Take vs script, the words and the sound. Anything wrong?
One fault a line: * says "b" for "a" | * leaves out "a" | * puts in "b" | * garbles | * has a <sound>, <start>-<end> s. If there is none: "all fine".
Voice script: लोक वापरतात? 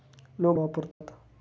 * has a dropout, 0.9-1.0 s